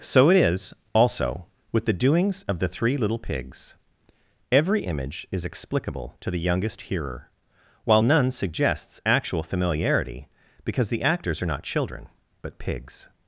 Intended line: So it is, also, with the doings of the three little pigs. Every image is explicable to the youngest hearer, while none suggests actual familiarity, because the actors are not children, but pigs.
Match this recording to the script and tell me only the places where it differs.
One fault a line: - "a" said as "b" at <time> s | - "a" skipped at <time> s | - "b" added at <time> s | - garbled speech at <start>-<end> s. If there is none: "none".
none